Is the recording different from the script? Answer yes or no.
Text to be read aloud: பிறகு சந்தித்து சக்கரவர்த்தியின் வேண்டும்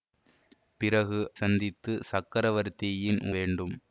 no